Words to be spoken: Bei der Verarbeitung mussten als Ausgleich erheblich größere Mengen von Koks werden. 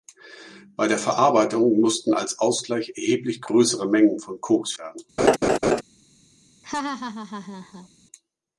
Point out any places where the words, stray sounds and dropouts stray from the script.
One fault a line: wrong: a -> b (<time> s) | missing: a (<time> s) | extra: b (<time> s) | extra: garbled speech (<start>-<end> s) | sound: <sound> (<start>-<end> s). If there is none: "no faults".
sound: laugh (5.2-5.8 s)
sound: laugh (6.6-7.9 s)